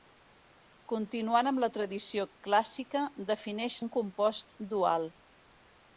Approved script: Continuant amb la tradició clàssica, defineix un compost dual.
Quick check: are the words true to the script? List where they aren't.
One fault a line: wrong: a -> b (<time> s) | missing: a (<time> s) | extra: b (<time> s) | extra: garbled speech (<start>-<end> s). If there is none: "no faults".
no faults